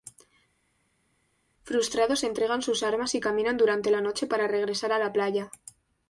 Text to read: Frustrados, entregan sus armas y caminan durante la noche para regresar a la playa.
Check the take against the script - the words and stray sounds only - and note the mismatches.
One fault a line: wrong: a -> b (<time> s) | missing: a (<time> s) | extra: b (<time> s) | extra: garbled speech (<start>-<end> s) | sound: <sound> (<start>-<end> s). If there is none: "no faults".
no faults